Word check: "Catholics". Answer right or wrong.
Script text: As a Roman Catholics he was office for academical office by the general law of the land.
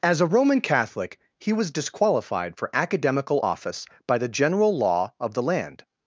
wrong